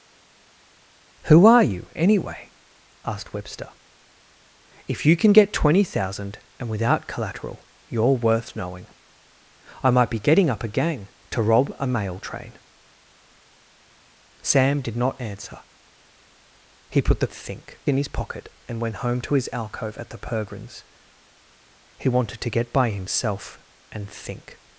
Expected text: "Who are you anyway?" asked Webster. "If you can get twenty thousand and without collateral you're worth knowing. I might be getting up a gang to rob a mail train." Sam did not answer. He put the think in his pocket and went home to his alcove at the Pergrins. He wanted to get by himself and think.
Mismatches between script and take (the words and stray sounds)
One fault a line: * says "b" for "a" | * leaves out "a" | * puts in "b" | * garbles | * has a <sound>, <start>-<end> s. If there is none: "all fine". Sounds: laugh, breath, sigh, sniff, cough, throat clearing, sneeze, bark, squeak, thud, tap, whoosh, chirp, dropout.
all fine